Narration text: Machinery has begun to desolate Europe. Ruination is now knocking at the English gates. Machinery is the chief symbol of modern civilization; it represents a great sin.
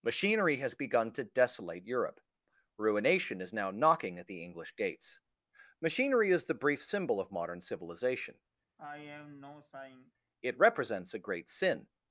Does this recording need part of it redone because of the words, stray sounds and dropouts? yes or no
yes